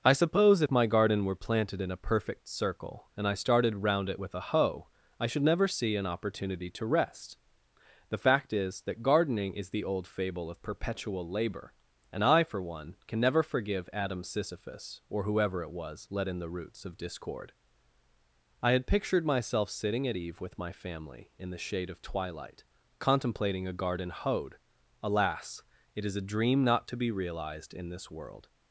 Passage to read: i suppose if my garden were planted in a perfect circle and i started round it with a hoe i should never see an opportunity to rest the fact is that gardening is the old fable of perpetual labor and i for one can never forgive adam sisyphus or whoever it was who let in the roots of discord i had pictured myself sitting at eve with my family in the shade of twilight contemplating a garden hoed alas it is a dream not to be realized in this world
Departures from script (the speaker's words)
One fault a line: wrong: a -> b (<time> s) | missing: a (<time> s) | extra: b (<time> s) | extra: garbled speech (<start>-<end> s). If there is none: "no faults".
missing: who (16.1 s)